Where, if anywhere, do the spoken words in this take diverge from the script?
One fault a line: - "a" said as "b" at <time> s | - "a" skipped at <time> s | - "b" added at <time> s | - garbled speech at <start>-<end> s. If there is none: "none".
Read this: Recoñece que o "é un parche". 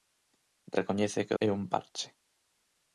none